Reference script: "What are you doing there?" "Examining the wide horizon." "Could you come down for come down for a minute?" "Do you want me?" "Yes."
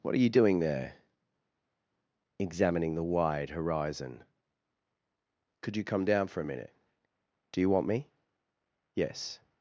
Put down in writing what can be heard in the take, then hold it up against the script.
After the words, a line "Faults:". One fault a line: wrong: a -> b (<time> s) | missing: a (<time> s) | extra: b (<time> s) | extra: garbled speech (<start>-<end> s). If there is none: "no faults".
"What are you doing there?" "Examining the wide horizon." "Could you come down for a minute?" "Do you want me?" "Yes."
Faults:
missing: come down for (6.4 s)